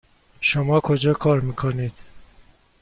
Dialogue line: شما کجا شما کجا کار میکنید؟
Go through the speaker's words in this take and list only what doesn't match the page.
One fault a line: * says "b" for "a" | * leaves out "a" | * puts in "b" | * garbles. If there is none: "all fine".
* leaves out "شما کجا"